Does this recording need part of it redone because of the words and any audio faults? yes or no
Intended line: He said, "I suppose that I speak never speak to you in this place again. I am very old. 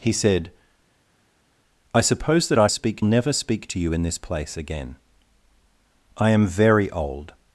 no